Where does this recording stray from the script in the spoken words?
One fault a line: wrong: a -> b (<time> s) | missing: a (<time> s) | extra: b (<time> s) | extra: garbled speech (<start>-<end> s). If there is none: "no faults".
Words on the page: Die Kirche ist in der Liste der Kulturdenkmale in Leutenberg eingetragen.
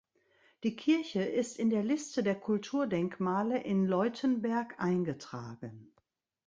no faults